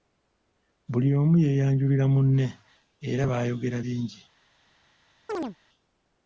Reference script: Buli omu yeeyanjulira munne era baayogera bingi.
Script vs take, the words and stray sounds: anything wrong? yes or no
yes